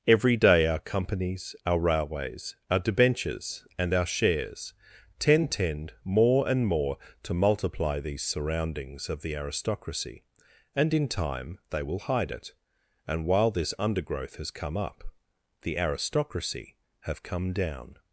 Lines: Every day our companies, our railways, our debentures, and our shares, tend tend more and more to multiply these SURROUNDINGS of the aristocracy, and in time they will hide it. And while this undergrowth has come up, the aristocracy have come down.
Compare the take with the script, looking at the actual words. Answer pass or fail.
pass